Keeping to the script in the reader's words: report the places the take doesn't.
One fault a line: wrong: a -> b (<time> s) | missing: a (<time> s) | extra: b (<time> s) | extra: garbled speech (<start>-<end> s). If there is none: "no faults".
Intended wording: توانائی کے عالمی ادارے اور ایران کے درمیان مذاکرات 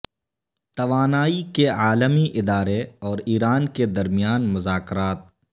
no faults